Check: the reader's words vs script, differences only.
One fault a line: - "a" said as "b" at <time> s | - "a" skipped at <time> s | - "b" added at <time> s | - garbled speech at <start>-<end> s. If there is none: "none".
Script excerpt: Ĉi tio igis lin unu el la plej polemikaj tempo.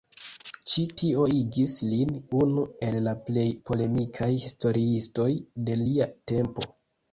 - "historiistoj de lia" added at 4.5 s